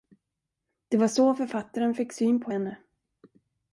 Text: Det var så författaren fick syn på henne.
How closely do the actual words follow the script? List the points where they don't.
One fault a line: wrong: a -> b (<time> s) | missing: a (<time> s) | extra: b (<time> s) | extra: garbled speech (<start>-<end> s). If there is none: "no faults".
no faults